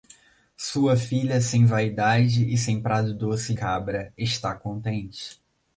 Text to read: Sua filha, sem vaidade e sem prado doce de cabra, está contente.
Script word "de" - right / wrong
wrong